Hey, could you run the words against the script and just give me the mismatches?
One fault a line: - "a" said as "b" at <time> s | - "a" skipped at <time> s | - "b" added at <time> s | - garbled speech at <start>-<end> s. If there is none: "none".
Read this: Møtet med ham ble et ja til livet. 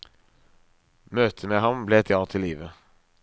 none